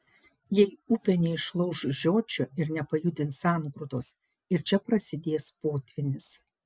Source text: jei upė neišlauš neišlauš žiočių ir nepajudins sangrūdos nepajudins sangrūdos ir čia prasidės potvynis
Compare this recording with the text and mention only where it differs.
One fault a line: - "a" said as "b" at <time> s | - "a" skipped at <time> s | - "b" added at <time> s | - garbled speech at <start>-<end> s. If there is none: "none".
- "neišlauš" skipped at 1.8 s
- "nepajudins sangrūdos" skipped at 4.1 s